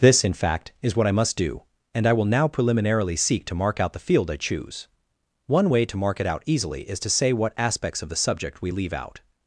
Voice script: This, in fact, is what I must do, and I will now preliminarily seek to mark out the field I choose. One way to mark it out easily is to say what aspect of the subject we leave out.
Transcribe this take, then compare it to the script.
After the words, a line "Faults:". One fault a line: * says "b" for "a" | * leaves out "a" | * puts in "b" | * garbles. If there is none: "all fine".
This, in fact, is what I must do, and I will now preliminarily seek to mark out the field I choose. One way to mark it out easily is to say what aspects of the subject we leave out.
Faults:
* says "aspects" for "aspect"